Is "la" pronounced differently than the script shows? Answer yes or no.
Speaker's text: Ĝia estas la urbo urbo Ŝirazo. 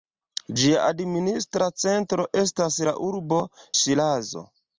no